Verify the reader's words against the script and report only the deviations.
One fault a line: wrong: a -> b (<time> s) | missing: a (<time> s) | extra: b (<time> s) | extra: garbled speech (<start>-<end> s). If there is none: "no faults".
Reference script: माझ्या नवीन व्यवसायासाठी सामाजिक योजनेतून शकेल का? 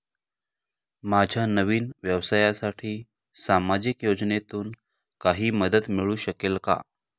extra: काही मदत मिळू (5.2 s)